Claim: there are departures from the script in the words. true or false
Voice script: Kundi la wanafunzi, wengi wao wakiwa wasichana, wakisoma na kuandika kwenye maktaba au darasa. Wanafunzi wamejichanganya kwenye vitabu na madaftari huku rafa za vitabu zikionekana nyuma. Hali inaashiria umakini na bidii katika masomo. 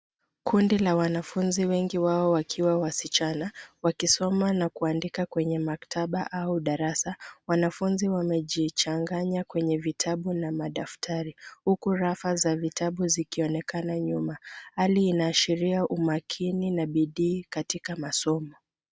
false